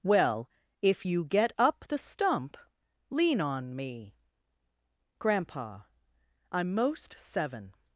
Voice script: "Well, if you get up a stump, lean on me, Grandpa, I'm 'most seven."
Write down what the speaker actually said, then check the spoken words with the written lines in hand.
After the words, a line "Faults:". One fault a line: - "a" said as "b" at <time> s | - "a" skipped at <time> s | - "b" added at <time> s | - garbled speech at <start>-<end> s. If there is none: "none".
"Well, if you get up the stump, lean on me, Grandpa, I'm 'most seven."
Faults:
- "a" said as "the" at 1.9 s